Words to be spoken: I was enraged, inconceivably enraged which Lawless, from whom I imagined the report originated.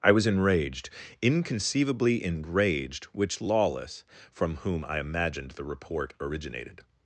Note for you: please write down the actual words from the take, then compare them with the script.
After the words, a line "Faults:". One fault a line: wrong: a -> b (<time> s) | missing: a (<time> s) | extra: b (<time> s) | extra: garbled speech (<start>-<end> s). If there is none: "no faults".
I was enraged, inconceivably enraged which Lawless, from whom I imagined the report originated.
Faults:
no faults